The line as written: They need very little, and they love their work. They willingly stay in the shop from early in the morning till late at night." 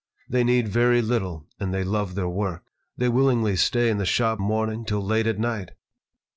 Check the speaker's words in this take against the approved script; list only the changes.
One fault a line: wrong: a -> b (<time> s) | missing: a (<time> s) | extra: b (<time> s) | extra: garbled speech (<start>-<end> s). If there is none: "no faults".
missing: from early in (4.4 s)